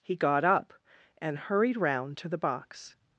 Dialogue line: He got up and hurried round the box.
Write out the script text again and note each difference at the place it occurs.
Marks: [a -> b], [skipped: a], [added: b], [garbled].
He got up and hurried round [added: to] the box.